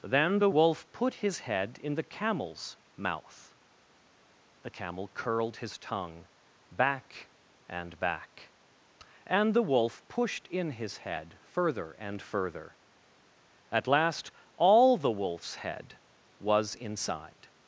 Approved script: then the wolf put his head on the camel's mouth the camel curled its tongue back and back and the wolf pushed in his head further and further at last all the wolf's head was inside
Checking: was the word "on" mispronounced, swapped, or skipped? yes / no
yes